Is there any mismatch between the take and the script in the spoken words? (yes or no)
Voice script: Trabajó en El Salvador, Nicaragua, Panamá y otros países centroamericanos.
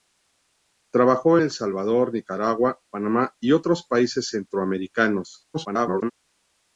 yes